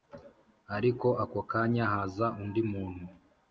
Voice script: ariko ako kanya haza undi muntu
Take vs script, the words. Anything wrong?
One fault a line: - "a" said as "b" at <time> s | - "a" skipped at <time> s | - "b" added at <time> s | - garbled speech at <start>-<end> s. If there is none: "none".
none